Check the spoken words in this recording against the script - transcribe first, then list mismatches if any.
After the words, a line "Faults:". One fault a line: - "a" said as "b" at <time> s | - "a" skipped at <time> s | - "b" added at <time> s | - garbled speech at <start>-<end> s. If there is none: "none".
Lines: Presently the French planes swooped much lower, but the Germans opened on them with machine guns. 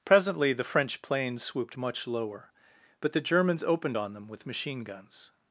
Presently the French planes swooped much lower, but the Germans opened on them with machine guns.
Faults:
none